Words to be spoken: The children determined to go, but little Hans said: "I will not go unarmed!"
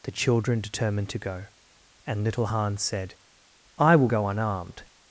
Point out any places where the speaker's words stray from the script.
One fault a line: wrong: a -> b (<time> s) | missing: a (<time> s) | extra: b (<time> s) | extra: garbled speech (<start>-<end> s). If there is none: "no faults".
wrong: but -> and (2.1 s)
missing: not (4.1 s)